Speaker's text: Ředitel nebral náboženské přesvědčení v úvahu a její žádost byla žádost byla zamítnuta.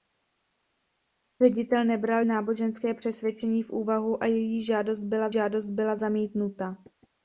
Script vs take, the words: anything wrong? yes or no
no